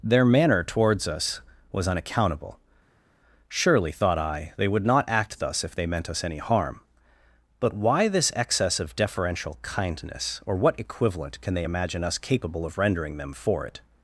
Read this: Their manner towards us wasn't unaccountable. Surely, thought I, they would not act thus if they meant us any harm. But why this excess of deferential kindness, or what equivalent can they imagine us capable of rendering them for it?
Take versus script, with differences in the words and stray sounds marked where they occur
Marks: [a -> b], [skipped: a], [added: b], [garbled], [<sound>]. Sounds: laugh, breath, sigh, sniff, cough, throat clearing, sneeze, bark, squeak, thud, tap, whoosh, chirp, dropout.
Their manner towards us [wasn't -> was] unaccountable. Surely, thought I, they would not act thus if they meant us any harm. But why this excess of deferential kindness, or what equivalent can they imagine us capable of rendering them for it?